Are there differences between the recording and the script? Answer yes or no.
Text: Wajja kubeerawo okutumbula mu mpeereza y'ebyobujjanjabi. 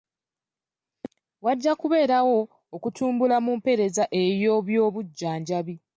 no